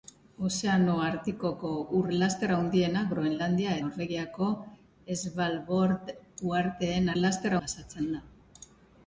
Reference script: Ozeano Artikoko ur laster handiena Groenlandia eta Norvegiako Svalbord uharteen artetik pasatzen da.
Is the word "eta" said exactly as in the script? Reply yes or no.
no